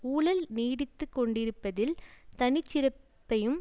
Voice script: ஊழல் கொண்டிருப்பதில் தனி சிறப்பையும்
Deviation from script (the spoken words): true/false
true